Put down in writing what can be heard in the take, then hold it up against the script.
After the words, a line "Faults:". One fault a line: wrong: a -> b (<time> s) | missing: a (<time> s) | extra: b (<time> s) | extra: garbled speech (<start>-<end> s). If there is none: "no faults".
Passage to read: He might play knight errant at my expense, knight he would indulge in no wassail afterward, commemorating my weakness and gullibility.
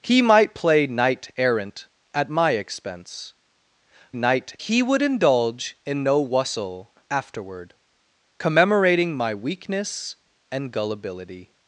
He might play knight errant at my expense, knight he would indulge in no wassail afterward, commemorating my weakness and gullibility.
Faults:
no faults